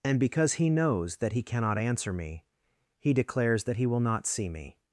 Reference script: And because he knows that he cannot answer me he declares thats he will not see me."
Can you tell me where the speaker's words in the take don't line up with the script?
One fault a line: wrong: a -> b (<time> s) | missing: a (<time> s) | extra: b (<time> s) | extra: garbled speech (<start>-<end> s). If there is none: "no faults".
wrong: thats -> that (3.6 s)